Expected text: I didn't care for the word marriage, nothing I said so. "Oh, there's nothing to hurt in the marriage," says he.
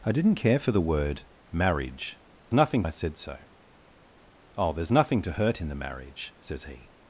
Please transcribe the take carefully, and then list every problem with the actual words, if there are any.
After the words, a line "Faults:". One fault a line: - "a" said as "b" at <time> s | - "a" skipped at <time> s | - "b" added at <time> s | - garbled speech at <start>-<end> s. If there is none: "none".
I didn't care for the word marriage, nothing I said so. "Oh, there's nothing to hurt in the marriage," says he.
Faults:
none